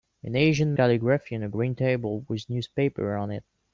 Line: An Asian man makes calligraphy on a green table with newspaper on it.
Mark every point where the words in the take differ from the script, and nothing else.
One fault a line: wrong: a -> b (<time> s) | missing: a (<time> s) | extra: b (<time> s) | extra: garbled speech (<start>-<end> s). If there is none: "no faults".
missing: man makes (0.8 s)